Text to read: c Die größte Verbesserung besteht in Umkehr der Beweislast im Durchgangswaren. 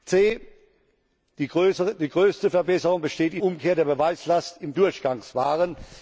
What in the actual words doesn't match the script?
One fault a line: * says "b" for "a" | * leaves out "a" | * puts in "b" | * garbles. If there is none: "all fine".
all fine